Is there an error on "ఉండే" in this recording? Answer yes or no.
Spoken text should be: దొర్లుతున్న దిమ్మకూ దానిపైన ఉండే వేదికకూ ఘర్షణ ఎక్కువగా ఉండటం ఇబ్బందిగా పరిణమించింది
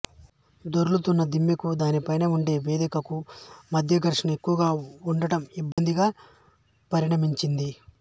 no